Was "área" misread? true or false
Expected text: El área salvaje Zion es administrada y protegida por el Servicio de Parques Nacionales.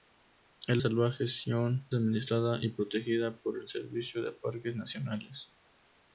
true